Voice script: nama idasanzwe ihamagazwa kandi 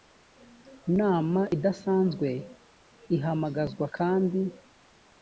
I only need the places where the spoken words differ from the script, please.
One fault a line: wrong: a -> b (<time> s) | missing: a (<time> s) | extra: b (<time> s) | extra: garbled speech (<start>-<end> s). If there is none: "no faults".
no faults